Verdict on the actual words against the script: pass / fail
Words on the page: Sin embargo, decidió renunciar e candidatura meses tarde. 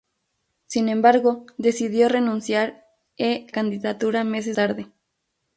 pass